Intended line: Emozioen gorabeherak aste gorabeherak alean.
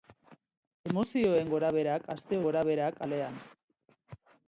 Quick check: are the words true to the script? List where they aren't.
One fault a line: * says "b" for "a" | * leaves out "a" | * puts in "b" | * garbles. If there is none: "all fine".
all fine